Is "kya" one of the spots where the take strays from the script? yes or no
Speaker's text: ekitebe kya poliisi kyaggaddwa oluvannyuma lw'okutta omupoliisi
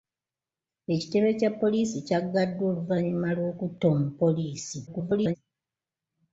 no